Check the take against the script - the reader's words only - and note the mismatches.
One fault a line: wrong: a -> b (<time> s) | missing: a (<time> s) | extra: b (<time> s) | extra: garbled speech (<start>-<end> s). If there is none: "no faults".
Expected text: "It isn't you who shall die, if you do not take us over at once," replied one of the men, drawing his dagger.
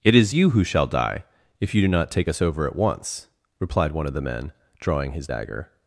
wrong: isn't -> is (0.1 s)